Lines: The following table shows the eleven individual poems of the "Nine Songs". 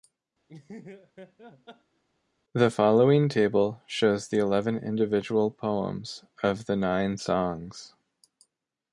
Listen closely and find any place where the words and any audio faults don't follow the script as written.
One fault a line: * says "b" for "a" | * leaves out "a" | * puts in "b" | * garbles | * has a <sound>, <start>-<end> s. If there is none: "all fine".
* has a laugh, 0.5-2.0 s